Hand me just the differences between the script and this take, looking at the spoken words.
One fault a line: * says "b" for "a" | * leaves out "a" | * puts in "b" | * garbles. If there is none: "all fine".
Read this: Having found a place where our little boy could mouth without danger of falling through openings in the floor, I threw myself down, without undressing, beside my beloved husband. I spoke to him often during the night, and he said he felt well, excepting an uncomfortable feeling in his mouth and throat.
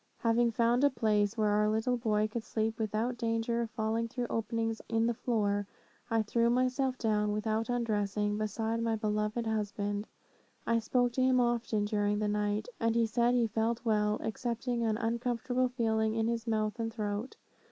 * says "sleep" for "mouth"